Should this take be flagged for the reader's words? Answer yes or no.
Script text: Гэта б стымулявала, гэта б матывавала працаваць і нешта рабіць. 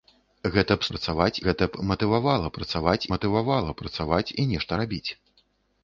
yes